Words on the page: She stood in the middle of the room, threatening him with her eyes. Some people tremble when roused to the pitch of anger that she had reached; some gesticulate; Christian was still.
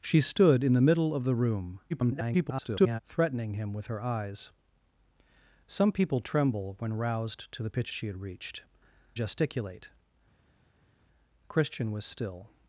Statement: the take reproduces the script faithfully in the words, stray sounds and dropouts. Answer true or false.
false